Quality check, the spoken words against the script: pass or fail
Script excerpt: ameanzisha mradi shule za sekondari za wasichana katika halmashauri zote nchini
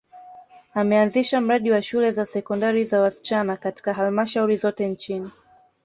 fail